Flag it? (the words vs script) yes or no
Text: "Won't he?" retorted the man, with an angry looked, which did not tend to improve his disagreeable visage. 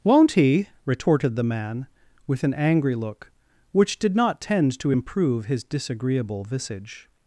yes